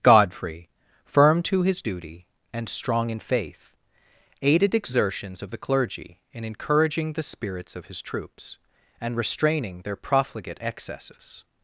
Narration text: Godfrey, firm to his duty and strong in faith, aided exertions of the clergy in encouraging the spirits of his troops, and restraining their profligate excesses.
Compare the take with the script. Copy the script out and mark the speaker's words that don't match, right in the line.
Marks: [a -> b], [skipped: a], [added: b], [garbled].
Godfrey, firm to his duty and strong in faith, aided exertions of the clergy in encouraging the spirits of his troops, and restraining their profligate excesses.